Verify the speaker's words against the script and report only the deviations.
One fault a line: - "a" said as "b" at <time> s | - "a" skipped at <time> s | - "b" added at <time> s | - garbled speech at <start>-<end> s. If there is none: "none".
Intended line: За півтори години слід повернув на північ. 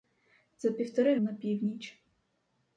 - "години слід повернув" skipped at 1.2 s